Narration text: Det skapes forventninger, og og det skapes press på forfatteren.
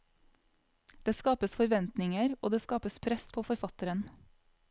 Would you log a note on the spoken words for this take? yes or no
yes